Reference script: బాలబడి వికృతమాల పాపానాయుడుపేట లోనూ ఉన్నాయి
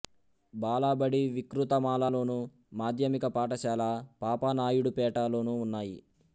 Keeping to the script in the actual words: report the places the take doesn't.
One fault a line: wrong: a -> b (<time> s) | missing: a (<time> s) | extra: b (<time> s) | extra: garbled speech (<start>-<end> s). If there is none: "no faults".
extra: లోను మాధ్యమిక పాఠశాల (2.1 s)